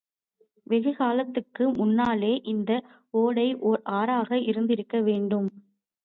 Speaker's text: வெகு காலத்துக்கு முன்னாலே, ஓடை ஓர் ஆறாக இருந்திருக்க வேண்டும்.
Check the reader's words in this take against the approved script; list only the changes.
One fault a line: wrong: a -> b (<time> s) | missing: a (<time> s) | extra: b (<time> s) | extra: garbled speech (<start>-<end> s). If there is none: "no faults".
extra: இந்த (2.4 s)